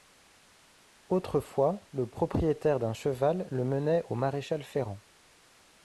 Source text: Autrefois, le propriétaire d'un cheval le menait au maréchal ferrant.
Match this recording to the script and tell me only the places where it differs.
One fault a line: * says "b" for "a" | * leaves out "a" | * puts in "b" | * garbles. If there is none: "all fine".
all fine